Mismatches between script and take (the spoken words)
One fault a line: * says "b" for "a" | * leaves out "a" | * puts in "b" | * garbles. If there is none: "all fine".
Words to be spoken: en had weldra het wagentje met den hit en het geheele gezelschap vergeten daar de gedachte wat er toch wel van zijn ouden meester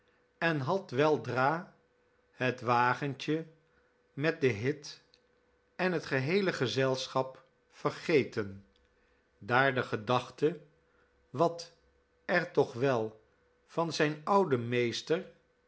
all fine